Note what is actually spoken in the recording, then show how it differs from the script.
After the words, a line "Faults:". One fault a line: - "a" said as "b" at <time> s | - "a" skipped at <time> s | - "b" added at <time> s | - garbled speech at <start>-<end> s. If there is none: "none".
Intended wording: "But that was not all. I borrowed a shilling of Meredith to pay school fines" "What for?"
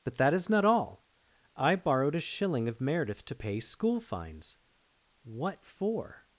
"But that is not all. I borrowed a shilling of Meredith to pay school fines" "What for?"
Faults:
- "was" said as "is" at 0.3 s